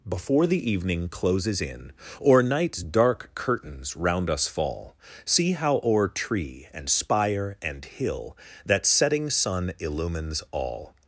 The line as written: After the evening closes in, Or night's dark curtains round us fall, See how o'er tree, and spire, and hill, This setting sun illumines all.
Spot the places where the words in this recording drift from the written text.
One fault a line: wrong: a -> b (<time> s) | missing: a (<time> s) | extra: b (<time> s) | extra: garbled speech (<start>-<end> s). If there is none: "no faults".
wrong: After -> Before (0.1 s)
wrong: This -> That (8.6 s)